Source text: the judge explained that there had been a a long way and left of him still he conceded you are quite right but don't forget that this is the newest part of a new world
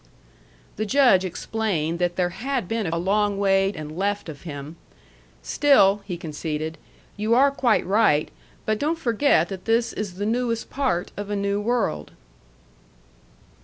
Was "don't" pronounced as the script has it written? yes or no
yes